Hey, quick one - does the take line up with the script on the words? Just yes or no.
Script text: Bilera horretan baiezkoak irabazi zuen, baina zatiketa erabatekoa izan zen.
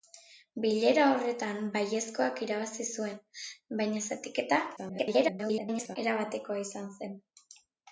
no